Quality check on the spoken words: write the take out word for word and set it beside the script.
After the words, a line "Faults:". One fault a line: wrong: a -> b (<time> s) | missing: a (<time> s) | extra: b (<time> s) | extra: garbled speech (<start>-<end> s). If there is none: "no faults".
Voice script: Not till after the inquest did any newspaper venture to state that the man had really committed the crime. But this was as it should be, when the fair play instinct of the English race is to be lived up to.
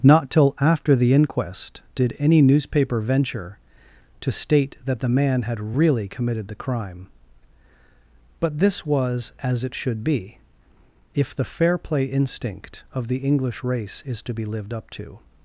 Not till after the inquest did any newspaper venture to state that the man had really committed the crime. But this was as it should be, if the fair play instinct of the English race is to be lived up to.
Faults:
wrong: when -> if (11.1 s)